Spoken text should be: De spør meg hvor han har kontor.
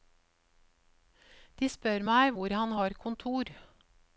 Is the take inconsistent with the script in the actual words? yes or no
no